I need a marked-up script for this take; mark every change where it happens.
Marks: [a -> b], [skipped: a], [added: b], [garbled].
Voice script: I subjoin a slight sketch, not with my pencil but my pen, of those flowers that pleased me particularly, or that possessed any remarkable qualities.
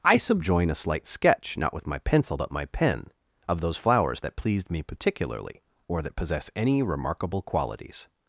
I subjoin a slight sketch, not with my pencil but my pen, of those flowers that pleased me particularly, or that [possessed -> possess] any remarkable qualities.